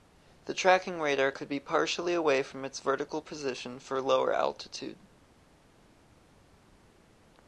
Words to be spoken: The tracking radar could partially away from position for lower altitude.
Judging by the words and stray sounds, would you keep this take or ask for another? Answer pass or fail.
fail